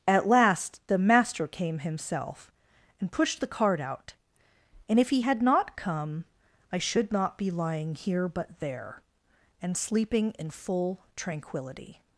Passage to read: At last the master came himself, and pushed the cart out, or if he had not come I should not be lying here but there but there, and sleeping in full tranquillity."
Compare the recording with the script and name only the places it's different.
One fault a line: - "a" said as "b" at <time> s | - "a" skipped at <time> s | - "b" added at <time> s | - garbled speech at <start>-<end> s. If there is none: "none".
- "or" said as "and" at 4.9 s
- "but there" skipped at 9.0 s